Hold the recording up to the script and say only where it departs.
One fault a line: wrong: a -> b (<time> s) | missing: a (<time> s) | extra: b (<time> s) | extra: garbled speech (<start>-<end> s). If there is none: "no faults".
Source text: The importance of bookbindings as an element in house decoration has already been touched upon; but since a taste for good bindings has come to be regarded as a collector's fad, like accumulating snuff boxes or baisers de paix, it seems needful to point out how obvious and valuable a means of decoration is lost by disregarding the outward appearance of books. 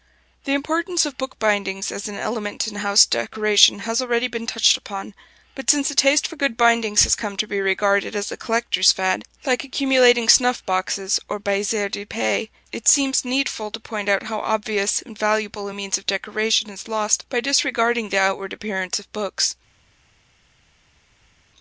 no faults